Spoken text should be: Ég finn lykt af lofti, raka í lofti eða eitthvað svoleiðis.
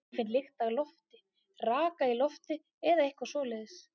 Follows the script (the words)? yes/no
yes